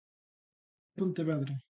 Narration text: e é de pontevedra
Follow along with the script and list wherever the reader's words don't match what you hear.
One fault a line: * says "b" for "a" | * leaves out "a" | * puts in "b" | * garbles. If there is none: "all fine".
* leaves out "é de"